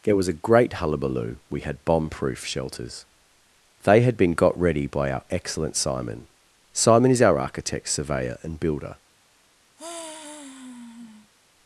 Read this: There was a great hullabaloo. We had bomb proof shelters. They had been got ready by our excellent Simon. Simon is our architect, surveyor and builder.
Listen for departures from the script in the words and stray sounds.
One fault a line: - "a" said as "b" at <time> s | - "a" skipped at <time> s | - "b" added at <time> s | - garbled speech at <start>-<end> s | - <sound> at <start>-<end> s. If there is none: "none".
- sigh at 9.8-11.3 s